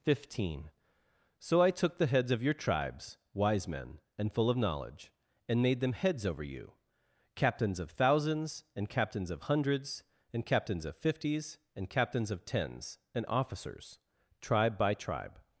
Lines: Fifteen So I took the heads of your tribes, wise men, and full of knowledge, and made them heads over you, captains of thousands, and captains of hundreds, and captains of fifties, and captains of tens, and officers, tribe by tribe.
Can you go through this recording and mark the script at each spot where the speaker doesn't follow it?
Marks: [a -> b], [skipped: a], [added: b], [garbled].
Fifteen So I took the heads of your tribes, wise men, and full of knowledge, and made them heads over you, captains of thousands, and captains of hundreds, and captains of fifties, and captains of tens, and officers, tribe by tribe.